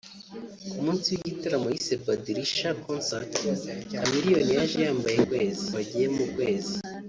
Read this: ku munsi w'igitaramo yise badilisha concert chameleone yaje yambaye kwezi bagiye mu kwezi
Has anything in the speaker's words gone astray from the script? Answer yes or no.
no